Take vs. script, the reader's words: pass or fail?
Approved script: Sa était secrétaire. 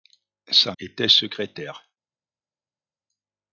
pass